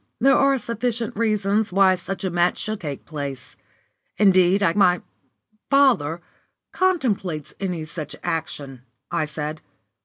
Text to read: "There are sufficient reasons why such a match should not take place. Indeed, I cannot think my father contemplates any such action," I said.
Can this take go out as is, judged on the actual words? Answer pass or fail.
fail